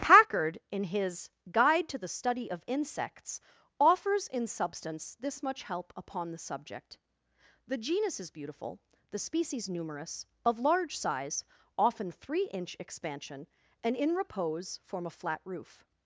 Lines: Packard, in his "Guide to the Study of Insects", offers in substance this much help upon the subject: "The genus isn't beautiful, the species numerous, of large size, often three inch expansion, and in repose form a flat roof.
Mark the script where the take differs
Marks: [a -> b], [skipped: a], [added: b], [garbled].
Packard, in his "Guide to the Study of Insects", offers in substance this much help upon the subject: "The genus [isn't -> is] beautiful, the species numerous, of large size, often three inch expansion, and in repose form a flat roof.